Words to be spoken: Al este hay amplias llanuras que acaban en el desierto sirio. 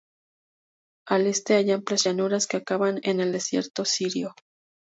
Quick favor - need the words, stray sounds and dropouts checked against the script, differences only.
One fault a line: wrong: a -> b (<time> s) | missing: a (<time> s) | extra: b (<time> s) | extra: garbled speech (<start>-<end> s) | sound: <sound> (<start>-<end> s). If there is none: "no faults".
no faults